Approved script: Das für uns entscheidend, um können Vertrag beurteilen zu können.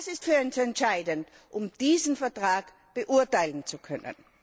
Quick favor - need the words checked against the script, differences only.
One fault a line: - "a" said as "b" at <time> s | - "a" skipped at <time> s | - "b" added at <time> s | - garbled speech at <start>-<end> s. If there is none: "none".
- "ist" added at 0.1 s
- "können" said as "diesen" at 1.7 s